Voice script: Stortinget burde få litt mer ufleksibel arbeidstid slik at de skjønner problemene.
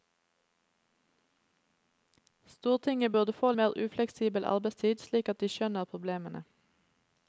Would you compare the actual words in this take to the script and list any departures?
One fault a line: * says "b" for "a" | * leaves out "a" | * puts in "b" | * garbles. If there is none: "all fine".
* leaves out "litt"